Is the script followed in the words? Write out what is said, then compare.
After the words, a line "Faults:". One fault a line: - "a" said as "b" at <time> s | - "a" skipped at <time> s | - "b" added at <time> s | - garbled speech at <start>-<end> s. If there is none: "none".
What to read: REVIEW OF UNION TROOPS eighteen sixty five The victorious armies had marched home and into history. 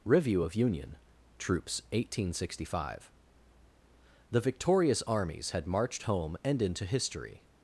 REVIEW OF UNION TROOPS eighteen sixty five The victorious armies had marched home and into history.
Faults:
none